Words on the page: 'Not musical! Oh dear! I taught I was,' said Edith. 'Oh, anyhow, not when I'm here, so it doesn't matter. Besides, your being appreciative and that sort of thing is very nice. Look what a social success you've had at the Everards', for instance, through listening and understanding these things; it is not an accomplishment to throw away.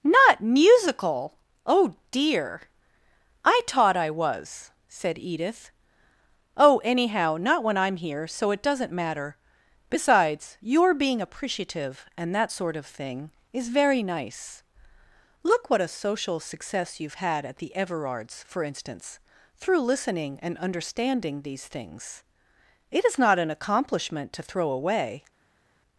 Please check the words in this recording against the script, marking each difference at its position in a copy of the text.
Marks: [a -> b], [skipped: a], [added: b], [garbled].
'Not musical! Oh dear! I taught I was,' said Edith. 'Oh, anyhow, not when I'm here, so it doesn't matter. Besides, your being appreciative and that sort of thing is very nice. Look what a social success you've had at the Everards', for instance, through listening and understanding these things; it is not an accomplishment to throw away.